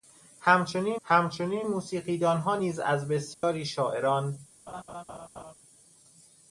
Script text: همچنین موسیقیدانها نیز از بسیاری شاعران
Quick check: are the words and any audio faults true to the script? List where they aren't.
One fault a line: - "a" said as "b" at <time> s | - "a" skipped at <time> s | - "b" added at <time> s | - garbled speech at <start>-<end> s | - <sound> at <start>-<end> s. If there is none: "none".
- "همچنین" added at 1.0 s
- dropout at 3.3-3.4 s
- laugh at 4.7-5.5 s